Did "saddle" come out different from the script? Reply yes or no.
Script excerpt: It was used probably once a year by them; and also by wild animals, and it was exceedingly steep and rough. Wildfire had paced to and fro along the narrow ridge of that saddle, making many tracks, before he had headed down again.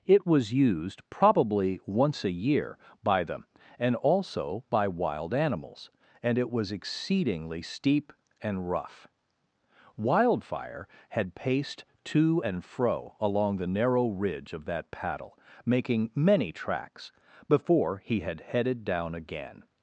yes